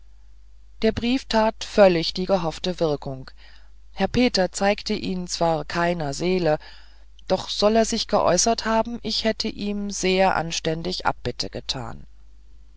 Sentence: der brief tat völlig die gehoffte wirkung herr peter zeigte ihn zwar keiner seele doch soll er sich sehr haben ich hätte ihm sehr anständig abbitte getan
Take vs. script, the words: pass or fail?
fail